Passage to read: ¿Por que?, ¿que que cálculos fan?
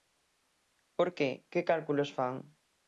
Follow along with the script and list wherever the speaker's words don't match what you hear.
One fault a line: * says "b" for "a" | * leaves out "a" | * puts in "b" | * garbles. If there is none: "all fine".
* leaves out "que"